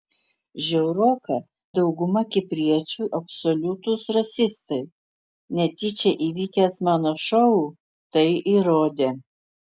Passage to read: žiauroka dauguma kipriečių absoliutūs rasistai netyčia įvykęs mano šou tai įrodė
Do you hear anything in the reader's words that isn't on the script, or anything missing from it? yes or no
no